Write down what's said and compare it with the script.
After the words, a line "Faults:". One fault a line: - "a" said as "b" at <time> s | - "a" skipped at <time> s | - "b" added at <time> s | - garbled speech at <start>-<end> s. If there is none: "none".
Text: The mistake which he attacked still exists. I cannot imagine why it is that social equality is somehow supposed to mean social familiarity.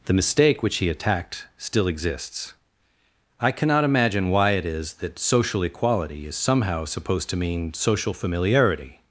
The mistake which he attacked still exists. I cannot imagine why it is that social equality is somehow supposed to mean social familiarity.
Faults:
none